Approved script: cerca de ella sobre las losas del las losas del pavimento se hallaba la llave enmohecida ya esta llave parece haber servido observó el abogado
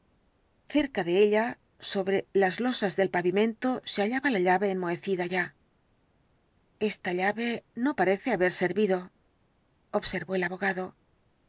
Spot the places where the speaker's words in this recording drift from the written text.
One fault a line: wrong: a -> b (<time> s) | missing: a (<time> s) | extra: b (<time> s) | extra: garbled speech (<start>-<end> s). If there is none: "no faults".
missing: las losas del (3.1 s)
extra: no (7.8 s)